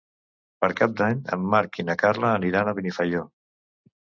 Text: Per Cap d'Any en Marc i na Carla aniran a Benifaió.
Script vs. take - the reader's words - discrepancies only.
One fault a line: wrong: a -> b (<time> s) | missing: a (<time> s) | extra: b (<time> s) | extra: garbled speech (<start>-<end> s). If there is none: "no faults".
no faults